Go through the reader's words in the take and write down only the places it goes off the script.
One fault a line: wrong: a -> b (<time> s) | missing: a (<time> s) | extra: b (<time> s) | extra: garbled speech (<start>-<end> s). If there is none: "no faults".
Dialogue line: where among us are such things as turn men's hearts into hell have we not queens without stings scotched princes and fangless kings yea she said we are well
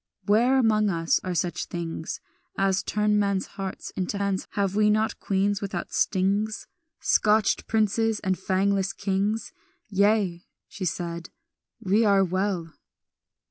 wrong: hell -> men's (4.2 s)